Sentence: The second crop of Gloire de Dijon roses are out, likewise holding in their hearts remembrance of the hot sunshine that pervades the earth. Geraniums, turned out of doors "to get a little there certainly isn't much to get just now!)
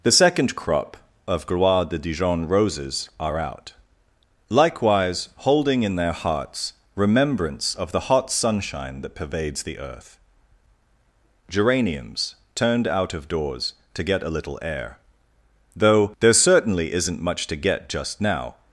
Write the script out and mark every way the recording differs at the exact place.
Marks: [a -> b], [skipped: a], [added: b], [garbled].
The second crop of Gloire de Dijon roses are out, likewise holding in their hearts remembrance of the hot sunshine that pervades the earth. Geraniums, turned out of doors "to get a little [added: air though] there certainly isn't much to get just now!)